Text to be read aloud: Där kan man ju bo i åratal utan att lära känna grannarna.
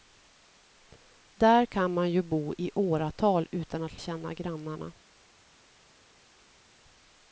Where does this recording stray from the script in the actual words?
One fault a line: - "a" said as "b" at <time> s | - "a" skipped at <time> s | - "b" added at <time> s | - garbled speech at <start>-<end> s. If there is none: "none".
- "lära" skipped at 4.0 s